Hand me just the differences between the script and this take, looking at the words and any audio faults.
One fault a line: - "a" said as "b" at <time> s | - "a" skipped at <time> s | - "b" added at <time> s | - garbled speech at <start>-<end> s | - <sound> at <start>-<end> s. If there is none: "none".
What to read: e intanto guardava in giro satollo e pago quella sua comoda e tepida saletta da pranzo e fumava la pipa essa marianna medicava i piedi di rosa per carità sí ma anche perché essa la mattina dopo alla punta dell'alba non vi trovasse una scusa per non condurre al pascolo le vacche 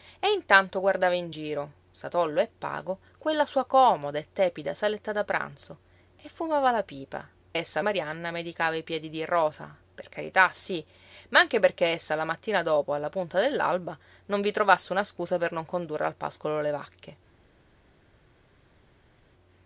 none